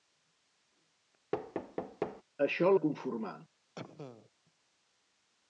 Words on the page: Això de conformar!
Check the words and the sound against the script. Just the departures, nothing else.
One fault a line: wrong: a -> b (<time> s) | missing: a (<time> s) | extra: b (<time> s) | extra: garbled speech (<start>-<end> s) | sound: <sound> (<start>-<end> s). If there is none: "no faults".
sound: thud (1.3-2.2 s)
sound: cough (3.8-4.3 s)